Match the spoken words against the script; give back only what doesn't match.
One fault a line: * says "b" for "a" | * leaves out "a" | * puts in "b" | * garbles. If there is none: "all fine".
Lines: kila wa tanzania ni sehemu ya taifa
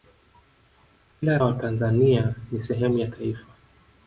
all fine